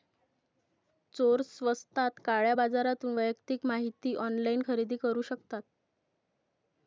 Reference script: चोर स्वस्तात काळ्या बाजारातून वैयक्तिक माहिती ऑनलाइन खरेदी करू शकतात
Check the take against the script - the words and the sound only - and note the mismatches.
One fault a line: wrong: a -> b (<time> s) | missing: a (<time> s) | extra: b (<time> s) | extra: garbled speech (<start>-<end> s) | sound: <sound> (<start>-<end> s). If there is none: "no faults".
no faults